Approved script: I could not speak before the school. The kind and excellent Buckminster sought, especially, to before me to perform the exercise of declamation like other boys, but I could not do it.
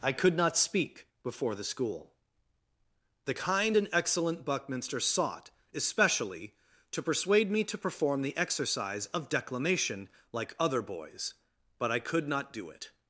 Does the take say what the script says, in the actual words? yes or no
no